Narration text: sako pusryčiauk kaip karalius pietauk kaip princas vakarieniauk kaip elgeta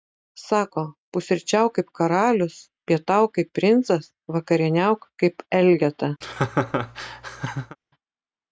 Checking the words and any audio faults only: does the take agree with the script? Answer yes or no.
no